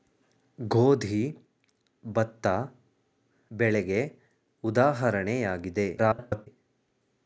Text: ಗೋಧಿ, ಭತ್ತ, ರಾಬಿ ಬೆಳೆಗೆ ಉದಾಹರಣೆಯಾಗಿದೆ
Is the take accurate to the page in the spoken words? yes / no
no